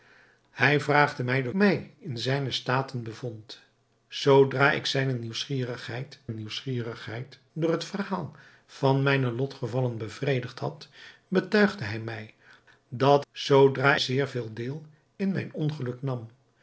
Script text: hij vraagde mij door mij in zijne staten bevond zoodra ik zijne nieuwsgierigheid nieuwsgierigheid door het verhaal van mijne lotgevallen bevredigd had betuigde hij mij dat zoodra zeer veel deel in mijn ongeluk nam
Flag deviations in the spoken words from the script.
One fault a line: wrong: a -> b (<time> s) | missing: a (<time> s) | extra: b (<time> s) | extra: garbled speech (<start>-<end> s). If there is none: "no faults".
no faults